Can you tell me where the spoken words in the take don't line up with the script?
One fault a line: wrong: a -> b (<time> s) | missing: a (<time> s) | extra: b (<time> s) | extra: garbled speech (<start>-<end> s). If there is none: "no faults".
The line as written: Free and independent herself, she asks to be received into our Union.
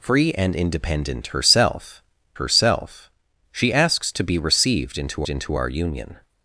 extra: herself (2.3 s)
extra: into (5.3 s)